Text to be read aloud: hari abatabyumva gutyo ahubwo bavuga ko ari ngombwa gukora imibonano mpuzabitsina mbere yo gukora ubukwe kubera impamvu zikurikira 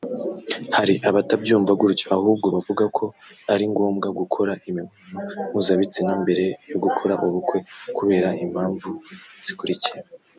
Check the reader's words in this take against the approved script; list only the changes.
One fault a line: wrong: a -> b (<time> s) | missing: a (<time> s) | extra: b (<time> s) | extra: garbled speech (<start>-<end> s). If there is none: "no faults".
no faults